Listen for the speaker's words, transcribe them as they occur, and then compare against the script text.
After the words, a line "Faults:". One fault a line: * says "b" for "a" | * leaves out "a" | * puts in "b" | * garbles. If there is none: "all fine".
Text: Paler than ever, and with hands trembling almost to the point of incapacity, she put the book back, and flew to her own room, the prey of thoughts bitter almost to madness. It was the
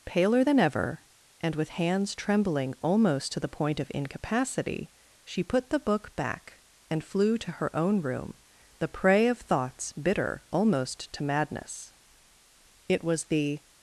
Paler than ever, and with hands trembling almost to the point of incapacity, she put the book back, and flew to her own room, the prey of thoughts bitter almost to madness. It was the
Faults:
all fine